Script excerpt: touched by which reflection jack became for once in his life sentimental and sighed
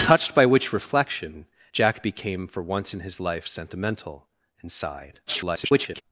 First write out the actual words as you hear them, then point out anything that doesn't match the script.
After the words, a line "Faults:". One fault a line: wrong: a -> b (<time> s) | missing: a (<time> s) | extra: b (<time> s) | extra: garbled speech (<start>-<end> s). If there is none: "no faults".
touched by which reflection jack became for once in his life sentimental and sighed [garbled]
Faults:
extra: garbled speech (5.3-6.0 s)